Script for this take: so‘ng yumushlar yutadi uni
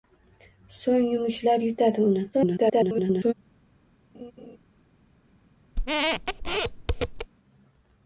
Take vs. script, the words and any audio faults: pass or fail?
fail